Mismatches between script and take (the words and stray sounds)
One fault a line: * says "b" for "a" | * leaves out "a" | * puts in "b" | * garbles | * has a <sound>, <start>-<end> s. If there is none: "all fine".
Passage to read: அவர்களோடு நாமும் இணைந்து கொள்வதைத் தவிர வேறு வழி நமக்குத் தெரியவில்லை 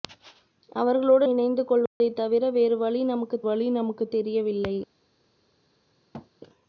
* leaves out "நாமும்"
* has a dropout, 1.9-2.0 s
* puts in "வழி நமக்குத்"
* has a thud, 6.1-6.3 s